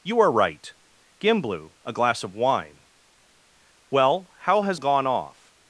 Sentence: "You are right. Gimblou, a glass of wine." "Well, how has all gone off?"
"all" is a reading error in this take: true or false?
true